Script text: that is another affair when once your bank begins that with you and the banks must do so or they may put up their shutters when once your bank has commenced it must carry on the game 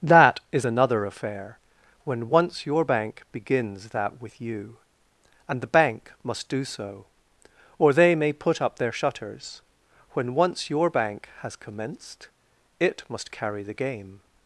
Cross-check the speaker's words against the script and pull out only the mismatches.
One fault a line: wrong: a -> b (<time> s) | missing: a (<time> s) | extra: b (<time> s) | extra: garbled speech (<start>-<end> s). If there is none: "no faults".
wrong: banks -> bank (5.7 s)
missing: on (13.6 s)